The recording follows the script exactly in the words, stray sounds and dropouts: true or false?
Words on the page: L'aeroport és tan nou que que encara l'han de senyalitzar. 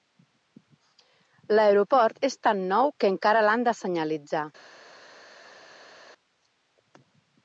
false